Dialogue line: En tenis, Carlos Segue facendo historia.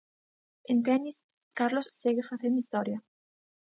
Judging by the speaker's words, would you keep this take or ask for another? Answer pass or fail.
pass